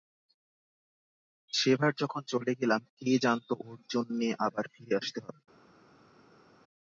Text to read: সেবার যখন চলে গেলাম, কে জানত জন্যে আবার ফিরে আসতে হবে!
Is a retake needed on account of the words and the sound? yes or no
yes